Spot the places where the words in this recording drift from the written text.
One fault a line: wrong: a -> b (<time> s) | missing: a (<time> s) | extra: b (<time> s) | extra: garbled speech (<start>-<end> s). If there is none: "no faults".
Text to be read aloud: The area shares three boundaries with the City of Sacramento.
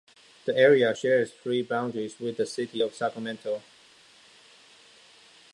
no faults